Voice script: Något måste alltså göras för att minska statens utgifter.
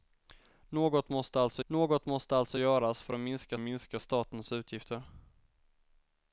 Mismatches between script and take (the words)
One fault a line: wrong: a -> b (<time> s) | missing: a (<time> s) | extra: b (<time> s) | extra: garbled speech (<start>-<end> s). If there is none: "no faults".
extra: något måste alltså (1.7 s)
extra: minska (3.6 s)